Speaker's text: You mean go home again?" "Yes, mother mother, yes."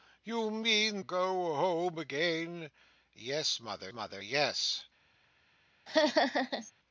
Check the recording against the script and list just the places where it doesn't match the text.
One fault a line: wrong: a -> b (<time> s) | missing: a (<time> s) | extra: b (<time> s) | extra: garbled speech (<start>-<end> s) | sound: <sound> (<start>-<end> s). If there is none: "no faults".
sound: laugh (5.9-6.7 s)